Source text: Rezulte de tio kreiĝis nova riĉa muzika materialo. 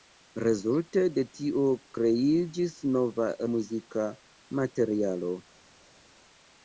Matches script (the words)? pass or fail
fail